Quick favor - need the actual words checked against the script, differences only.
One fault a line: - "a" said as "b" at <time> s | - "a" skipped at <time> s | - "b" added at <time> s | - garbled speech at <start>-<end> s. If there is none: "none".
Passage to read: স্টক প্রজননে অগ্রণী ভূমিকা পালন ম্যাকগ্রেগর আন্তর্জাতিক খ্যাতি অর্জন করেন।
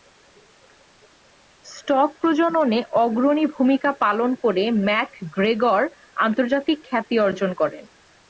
- "করে" added at 4.4 s